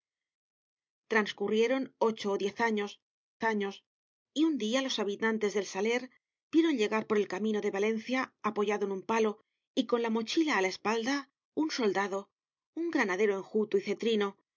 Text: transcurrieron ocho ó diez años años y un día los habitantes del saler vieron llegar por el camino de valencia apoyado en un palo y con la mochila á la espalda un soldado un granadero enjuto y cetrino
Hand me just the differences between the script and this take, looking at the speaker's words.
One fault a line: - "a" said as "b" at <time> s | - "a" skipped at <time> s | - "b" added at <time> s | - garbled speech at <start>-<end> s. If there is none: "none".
none